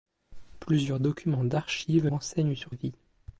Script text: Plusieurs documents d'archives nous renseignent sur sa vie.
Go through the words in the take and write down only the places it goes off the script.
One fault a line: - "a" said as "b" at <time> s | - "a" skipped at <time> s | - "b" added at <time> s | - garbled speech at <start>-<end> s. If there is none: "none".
- "nous" skipped at 2.1 s
- "sa" skipped at 2.7 s